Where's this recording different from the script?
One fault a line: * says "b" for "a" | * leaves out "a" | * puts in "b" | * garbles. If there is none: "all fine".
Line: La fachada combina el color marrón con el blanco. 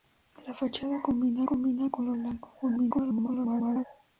* puts in "combina"
* leaves out "marrón con"
* garbles